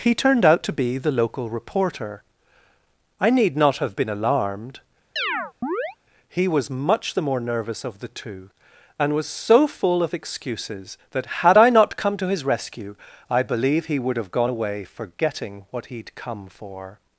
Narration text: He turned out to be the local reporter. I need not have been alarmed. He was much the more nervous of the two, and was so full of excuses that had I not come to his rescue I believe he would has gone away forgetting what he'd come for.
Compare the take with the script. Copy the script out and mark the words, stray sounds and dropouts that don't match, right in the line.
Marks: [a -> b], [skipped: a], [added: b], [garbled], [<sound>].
He turned out to be the local reporter. I need not have been alarmed. [chirp] He was much the more nervous of the two, and was so full of excuses that had I not come to his rescue I believe he would [has -> have] gone away forgetting what he'd come for.